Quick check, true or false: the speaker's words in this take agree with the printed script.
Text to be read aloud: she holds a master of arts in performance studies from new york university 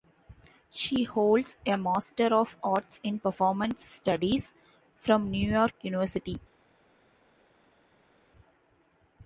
true